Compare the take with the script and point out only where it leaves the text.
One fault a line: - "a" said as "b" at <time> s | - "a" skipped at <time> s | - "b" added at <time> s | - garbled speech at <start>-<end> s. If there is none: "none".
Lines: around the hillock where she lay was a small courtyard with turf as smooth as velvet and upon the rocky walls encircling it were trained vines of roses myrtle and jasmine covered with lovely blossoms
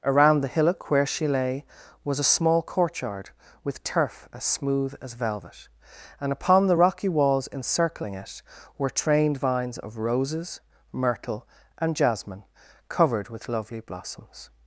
none